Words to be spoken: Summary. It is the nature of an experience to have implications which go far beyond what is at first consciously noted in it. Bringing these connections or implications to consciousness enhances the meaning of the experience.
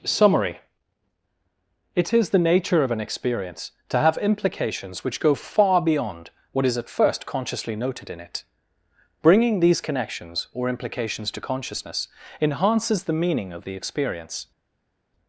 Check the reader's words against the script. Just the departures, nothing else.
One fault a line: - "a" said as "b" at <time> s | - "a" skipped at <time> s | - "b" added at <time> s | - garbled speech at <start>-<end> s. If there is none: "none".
none